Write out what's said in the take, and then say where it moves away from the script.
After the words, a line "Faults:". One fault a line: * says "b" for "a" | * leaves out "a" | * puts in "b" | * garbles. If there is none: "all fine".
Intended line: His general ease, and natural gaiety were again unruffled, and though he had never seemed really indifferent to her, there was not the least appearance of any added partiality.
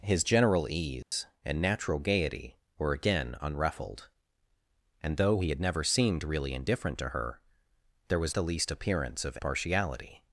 His general ease, and natural gaiety were again unruffled, and though he had never seemed really indifferent to her, there was the least appearance of partiality.
Faults:
* leaves out "not"
* leaves out "any added"